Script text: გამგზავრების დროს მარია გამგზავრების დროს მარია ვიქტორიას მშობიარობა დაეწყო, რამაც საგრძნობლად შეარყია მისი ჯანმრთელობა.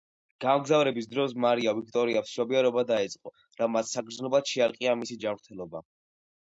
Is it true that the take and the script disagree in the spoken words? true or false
true